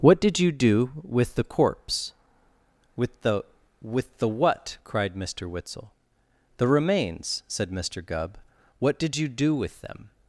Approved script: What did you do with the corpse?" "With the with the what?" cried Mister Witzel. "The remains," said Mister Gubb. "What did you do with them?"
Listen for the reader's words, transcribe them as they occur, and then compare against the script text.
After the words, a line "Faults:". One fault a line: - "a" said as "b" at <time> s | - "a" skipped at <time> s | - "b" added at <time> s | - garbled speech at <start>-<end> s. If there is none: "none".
What did you do with the corpse?" "With the with the what?" cried Mister Witzel. "The remains," said Mister Gubb. "What did you do with them?"
Faults:
none